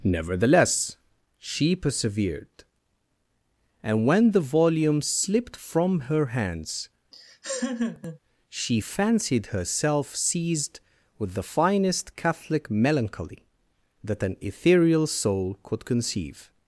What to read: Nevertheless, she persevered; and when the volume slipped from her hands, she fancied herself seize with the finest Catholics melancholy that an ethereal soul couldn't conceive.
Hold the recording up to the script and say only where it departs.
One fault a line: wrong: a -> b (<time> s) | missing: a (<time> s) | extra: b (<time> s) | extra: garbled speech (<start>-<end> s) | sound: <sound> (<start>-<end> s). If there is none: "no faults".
sound: laugh (7.1-8.2 s)
wrong: seize -> seized (10.1 s)
wrong: Catholics -> Catholic (12.1 s)
wrong: couldn't -> could (15.6 s)